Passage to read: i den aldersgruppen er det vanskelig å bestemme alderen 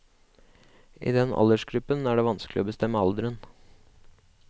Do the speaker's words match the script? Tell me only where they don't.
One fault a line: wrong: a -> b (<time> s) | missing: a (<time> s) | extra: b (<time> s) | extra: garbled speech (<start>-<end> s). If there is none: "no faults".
no faults